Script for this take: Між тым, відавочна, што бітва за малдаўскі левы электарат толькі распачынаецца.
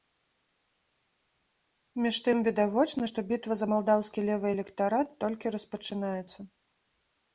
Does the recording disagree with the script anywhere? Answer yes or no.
no